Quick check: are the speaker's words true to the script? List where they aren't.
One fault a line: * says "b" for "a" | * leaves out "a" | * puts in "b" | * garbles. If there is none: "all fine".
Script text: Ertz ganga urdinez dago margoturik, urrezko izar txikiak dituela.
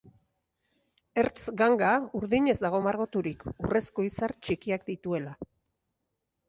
all fine